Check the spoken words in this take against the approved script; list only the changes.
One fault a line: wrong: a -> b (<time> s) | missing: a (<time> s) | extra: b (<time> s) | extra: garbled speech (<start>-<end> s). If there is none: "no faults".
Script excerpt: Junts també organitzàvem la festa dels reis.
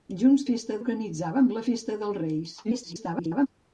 wrong: també -> festa (0.5 s)
extra: garbled speech (2.6-3.5 s)